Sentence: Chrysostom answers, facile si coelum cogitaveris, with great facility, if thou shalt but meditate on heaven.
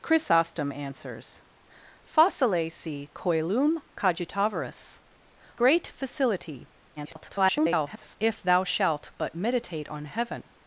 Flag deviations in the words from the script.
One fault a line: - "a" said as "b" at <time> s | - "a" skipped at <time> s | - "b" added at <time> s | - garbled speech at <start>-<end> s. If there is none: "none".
- "with" skipped at 5.0 s
- garbled speech at 7.0-8.2 s